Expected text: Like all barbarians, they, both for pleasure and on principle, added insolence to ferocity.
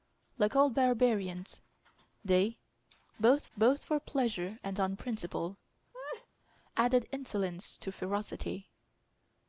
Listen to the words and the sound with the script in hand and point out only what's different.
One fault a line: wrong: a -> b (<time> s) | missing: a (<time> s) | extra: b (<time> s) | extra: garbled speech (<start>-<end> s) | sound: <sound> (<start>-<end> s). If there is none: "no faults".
extra: both (3.6 s)
sound: laugh (5.9-6.3 s)